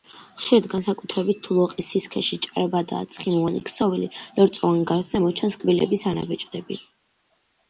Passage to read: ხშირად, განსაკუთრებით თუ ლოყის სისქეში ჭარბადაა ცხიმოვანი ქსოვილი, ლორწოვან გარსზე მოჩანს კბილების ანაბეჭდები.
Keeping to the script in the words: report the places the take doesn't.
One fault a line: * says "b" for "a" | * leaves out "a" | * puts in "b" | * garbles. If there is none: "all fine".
all fine